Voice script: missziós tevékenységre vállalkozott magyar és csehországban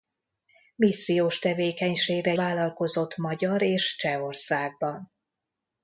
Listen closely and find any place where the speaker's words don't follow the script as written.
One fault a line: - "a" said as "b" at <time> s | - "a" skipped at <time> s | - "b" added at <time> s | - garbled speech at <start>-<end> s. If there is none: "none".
none